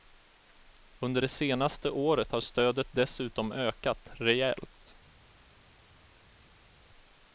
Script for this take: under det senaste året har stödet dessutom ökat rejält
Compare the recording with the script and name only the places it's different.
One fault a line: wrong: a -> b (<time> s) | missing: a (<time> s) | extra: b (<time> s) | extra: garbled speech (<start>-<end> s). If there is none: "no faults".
no faults